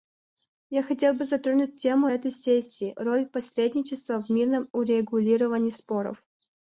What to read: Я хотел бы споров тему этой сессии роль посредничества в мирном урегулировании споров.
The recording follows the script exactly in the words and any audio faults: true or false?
false